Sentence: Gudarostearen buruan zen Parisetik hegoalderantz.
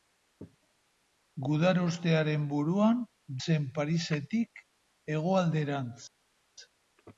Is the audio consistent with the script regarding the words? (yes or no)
yes